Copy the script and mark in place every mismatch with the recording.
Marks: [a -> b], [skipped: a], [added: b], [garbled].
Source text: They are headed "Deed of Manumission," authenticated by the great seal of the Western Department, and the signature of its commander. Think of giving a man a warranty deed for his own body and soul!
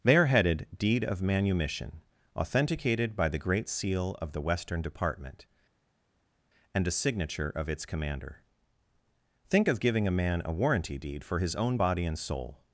They are headed "Deed of Manumission," authenticated by the great seal of the Western Department, and [the -> a] signature of its commander. Think of giving a man a warranty deed for his own body and soul!